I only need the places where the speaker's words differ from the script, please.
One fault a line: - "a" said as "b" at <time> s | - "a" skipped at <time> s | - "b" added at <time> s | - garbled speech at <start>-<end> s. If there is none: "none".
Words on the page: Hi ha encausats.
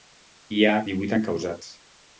- "divuit" added at 0.9 s